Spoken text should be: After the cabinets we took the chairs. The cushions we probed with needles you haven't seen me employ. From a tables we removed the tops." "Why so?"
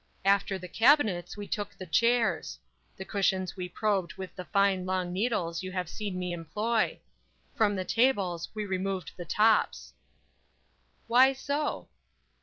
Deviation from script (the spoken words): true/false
true